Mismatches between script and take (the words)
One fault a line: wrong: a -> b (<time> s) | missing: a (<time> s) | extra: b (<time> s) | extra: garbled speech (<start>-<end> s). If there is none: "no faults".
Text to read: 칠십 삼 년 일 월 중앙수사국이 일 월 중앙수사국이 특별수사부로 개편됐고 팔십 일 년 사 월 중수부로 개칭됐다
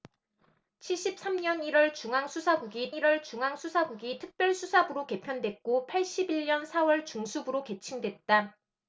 no faults